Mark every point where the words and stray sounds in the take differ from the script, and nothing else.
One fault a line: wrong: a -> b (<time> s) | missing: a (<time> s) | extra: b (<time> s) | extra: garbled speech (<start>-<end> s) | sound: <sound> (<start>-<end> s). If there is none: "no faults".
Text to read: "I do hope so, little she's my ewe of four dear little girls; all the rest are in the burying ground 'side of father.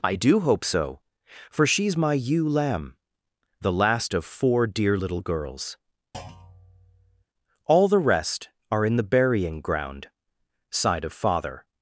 wrong: little -> for (1.5 s)
extra: lamb the last (2.5 s)
sound: thud (6.1-7.2 s)